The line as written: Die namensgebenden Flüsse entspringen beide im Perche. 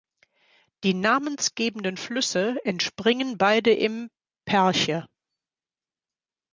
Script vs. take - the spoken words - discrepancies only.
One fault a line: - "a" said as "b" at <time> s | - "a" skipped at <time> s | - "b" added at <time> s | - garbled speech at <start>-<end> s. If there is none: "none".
none